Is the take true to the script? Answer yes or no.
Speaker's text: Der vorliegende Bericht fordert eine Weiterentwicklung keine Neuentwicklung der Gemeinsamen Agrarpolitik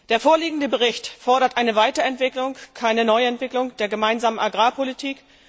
yes